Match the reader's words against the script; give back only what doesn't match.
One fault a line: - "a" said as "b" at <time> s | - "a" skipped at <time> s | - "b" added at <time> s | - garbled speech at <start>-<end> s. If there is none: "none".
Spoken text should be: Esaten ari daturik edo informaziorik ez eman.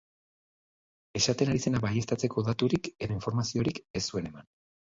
- "zena baieztatzeko" added at 1.6 s
- "zuen" added at 4.1 s